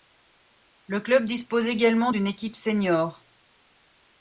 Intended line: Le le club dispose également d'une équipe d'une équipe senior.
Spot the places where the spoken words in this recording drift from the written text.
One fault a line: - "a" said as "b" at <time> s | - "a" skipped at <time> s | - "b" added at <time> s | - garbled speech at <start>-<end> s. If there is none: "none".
- "le" skipped at 1.0 s
- "d'une équipe" skipped at 2.5 s